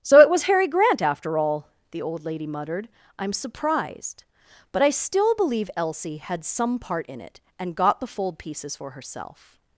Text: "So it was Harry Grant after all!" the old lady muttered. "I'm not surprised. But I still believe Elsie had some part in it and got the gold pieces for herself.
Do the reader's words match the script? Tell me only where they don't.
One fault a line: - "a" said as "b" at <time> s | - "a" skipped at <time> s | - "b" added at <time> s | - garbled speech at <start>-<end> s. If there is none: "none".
- "not" skipped at 3.3 s
- "gold" said as "fold" at 8.1 s